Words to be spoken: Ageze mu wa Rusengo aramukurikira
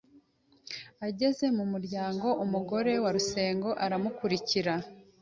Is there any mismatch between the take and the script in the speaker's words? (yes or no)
yes